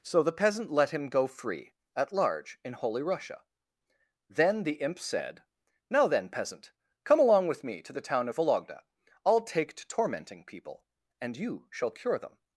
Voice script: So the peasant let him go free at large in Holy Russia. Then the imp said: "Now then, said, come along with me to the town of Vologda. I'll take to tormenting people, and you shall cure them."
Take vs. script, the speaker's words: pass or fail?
fail